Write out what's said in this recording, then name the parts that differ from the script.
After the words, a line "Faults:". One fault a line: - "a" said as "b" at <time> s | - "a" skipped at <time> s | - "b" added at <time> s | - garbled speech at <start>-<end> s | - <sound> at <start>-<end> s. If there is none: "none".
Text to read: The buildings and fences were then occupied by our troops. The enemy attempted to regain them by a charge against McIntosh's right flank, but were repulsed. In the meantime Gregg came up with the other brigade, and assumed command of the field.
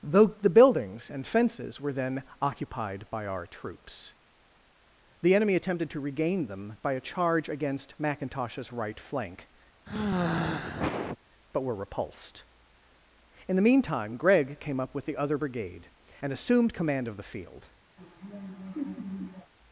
though The buildings and fences were then occupied by our troops. The enemy attempted to regain them by a charge against McIntosh's right flank, but were repulsed. In the meantime Gregg came up with the other brigade, and assumed command of the field.
Faults:
- "though" added at 0.0 s
- sigh at 9.9-11.2 s
- laugh at 18.0-19.5 s